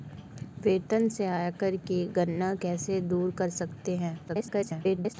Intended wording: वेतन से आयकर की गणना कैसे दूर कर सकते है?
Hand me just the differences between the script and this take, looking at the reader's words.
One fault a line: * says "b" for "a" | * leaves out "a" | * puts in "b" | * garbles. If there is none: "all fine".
* garbles